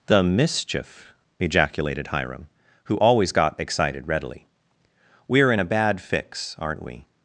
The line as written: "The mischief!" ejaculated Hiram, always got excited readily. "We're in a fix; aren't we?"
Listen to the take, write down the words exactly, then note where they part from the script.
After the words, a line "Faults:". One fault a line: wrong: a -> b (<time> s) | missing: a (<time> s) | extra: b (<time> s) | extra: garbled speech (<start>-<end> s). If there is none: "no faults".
"The mischief!" ejaculated Hiram, who always got excited readily. "We're in a bad fix; aren't we?"
Faults:
extra: who (2.9 s)
extra: bad (5.6 s)